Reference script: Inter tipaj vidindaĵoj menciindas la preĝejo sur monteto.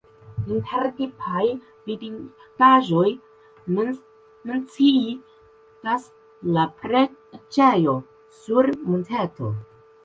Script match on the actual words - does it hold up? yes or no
yes